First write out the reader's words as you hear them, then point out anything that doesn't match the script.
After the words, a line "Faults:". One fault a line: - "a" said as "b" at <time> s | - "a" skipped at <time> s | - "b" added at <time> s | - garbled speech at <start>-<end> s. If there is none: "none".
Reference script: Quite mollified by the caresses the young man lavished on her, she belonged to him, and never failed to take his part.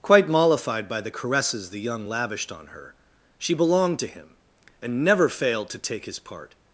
Quite mollified by the caresses the young lavished on her, she belonged to him, and never failed to take his part.
Faults:
- "man" skipped at 2.1 s